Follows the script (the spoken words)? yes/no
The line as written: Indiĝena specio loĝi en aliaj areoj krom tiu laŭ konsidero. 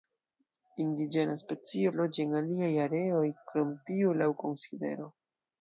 yes